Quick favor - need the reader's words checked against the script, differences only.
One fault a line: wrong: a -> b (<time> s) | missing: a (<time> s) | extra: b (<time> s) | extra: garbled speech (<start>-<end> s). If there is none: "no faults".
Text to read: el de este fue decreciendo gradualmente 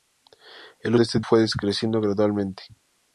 no faults